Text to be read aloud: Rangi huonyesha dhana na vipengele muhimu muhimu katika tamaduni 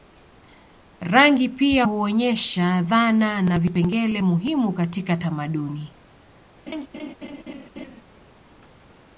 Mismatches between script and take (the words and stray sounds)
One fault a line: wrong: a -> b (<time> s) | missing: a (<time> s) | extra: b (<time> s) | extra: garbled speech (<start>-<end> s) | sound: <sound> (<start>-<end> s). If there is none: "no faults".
extra: pia (1.5 s)
missing: muhimu (4.7 s)
sound: laugh (6.7-8.0 s)